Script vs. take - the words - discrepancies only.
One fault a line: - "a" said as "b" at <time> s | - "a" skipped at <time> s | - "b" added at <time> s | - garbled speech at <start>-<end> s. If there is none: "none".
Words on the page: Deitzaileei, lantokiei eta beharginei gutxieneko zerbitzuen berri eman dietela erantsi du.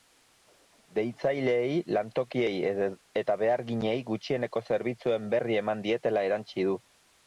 none